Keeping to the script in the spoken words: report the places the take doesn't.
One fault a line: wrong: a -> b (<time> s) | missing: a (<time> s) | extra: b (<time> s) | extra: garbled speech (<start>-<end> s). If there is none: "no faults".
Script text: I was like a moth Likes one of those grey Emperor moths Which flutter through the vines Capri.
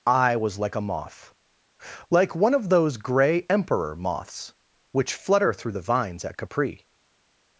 wrong: Likes -> Like (2.1 s)
extra: at (6.2 s)